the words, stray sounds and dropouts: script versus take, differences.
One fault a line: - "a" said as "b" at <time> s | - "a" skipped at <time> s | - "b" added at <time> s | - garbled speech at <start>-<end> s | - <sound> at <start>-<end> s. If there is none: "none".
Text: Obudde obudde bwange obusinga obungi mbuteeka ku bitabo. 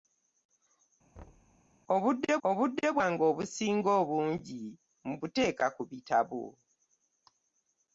- thud at 1.1-1.6 s